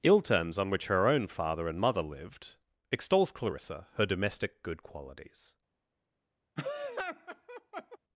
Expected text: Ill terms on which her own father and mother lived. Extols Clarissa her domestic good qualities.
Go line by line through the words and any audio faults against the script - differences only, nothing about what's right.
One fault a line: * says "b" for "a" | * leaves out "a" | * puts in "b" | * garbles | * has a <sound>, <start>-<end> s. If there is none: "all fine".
* has a laugh, 6.6-8.0 s